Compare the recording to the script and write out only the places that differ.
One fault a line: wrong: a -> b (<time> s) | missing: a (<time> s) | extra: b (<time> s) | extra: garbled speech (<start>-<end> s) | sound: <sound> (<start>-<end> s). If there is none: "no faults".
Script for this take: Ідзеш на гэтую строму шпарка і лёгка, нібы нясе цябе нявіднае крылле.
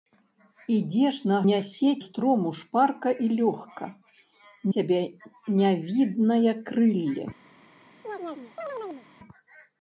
wrong: гэтую -> нясе (1.5 s)
missing: нібы нясе (3.9 s)
sound: chirp (8.0-9.1 s)